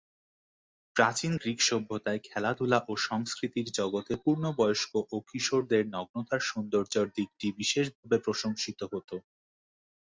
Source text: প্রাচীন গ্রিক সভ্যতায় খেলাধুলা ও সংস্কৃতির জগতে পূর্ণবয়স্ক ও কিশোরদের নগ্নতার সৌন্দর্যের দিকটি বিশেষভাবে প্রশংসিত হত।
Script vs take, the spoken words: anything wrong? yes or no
no